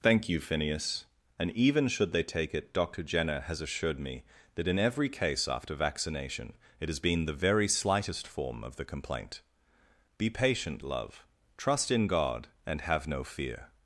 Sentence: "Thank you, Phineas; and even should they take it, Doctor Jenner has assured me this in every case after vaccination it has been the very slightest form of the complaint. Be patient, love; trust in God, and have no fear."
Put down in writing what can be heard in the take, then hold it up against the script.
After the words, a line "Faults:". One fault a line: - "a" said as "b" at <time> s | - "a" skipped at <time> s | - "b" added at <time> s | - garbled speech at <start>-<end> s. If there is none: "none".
"Thank you, Phineas; and even should they take it, Doctor Jenner has assured me that in every case after vaccination it has been the very slightest form of the complaint. Be patient, love; trust in God, and have no fear."
Faults:
- "this" said as "that" at 4.5 s